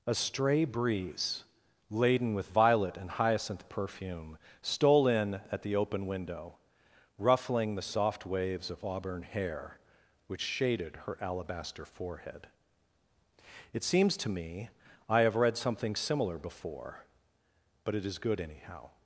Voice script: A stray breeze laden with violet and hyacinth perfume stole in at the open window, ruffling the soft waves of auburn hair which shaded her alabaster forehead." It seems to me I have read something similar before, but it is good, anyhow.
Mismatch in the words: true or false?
false